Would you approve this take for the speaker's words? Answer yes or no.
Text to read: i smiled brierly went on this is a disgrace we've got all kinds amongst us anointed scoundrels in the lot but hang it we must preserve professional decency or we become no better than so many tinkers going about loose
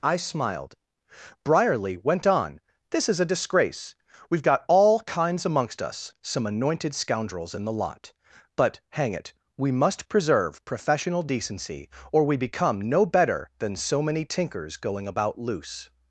no